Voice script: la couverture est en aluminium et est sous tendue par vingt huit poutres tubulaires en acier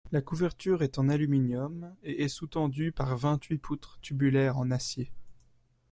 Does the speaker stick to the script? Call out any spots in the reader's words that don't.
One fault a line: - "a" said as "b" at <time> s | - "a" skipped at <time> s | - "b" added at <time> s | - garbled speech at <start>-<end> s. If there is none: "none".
none